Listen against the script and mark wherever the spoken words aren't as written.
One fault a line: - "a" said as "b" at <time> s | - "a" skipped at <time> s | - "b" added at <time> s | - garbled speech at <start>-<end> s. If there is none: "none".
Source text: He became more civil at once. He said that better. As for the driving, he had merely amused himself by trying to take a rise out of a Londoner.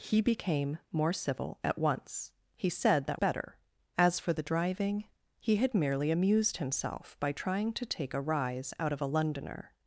none